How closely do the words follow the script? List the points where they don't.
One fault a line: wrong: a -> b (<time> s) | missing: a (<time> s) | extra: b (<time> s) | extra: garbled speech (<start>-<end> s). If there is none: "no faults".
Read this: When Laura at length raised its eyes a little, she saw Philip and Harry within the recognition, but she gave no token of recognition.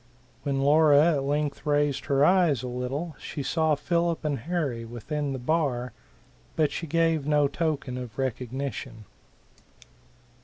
wrong: its -> her (2.0 s)
wrong: recognition -> bar (5.4 s)